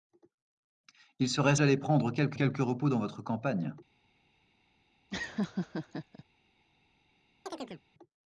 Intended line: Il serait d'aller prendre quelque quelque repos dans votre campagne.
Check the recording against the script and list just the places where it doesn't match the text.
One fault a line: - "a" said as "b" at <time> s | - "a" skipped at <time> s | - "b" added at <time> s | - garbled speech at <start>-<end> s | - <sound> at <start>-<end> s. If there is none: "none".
- laugh at 5.1-6.2 s
- chirp at 7.5-7.8 s